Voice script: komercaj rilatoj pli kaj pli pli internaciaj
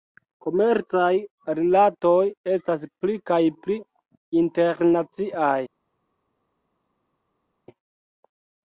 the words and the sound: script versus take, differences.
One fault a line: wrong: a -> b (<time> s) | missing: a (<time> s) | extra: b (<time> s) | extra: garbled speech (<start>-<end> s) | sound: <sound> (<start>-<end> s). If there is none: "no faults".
extra: estas (2.5 s)
missing: pli (3.8 s)